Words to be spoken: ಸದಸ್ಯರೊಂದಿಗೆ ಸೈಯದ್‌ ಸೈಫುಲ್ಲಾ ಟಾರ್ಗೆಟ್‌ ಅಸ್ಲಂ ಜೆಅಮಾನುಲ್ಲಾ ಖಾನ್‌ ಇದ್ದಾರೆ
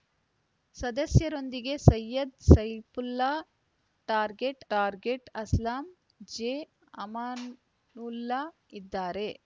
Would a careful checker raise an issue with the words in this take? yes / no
yes